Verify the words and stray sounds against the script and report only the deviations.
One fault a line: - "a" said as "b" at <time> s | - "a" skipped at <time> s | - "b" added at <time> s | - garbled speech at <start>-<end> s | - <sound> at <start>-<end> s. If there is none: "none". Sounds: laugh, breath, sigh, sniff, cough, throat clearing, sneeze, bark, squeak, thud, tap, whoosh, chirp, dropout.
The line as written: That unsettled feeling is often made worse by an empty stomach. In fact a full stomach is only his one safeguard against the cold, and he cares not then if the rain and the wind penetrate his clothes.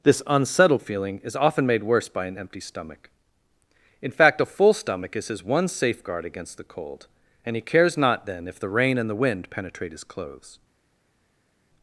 - "That" said as "This" at 0.0 s
- "only" skipped at 5.3 s